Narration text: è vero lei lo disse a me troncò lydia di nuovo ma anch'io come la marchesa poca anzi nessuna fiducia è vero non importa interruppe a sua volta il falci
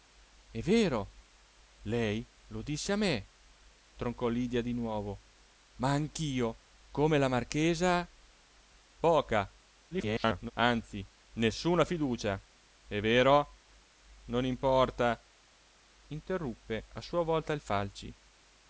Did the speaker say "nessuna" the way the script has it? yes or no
yes